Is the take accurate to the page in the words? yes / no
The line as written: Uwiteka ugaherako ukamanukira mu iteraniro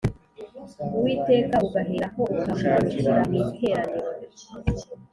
yes